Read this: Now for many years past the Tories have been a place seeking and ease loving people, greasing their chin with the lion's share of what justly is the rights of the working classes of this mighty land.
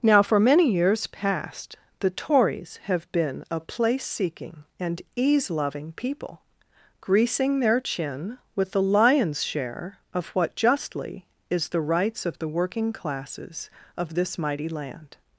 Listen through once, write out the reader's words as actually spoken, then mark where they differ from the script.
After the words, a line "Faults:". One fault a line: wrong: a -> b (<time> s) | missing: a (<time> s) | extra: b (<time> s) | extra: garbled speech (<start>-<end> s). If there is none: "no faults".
Now for many years past the Tories have been a place seeking and ease loving people, greasing their chin with the lion's share of what justly is the rights of the working classes of this mighty land.
Faults:
no faults